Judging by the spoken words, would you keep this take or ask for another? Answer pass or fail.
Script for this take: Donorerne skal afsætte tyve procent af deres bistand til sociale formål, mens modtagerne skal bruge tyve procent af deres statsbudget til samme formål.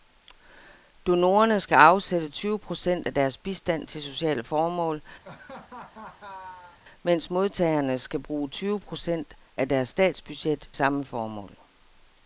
fail